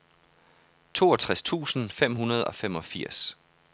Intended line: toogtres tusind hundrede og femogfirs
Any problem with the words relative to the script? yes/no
yes